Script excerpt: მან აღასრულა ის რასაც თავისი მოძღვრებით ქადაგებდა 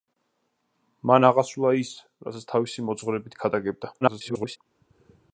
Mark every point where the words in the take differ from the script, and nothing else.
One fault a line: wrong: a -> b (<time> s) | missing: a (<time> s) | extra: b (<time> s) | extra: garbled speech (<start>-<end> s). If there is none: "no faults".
extra: garbled speech (4.0-4.6 s)